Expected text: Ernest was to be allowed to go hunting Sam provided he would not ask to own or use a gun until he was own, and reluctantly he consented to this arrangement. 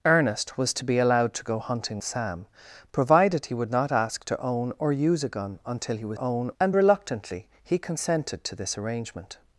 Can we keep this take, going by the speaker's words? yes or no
yes